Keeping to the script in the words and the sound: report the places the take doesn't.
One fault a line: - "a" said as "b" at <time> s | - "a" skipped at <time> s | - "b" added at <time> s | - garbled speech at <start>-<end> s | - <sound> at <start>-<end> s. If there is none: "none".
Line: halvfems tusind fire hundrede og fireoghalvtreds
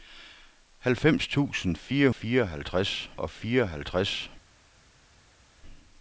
- "hundrede" said as "fireoghalvtreds" at 2.1 s